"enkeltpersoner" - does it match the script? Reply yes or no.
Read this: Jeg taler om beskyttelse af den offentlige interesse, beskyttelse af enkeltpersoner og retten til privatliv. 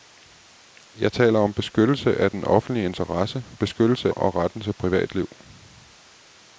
no